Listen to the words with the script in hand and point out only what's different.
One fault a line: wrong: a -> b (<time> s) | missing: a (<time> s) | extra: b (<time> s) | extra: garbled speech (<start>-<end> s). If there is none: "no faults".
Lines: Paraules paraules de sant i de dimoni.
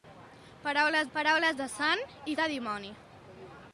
no faults